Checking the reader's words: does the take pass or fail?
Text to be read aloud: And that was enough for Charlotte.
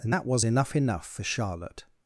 fail